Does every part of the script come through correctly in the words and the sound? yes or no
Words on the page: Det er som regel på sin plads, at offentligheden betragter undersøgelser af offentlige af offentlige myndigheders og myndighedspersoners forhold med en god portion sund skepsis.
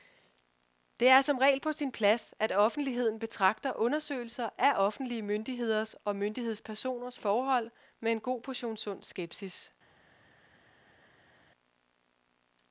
no